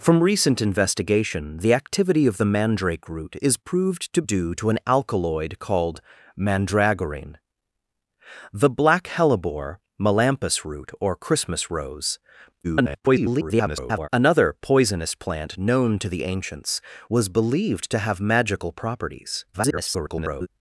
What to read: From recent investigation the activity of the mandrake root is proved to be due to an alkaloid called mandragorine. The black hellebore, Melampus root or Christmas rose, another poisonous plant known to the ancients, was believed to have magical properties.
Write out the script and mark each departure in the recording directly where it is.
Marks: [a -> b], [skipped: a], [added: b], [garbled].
From recent investigation the activity of the mandrake root is proved to [skipped: be] due to an alkaloid called mandragorine. The black hellebore, Melampus root or Christmas rose, [garbled] another poisonous plant known to the ancients, was believed to have magical properties. [garbled]